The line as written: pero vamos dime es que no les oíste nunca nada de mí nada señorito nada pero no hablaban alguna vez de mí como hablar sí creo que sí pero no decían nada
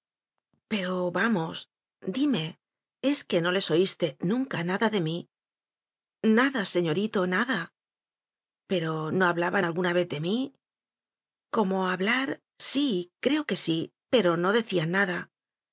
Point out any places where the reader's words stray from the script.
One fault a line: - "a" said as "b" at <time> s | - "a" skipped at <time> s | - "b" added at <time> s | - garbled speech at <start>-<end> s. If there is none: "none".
none